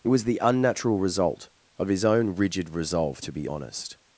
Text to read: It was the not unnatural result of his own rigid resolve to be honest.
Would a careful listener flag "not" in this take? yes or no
yes